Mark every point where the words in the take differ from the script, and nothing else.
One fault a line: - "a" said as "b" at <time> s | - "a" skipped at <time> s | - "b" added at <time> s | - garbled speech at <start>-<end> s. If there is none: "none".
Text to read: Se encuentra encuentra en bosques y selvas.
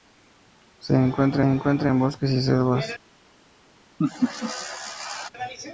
none